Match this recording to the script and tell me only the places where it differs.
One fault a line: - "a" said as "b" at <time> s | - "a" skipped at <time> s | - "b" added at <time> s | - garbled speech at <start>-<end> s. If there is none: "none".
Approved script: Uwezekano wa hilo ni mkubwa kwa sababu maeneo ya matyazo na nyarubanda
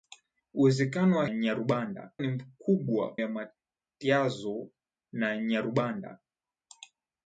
- "hilo" said as "nyarubanda" at 1.3 s
- "kwa sababu maeneo" skipped at 3.1 s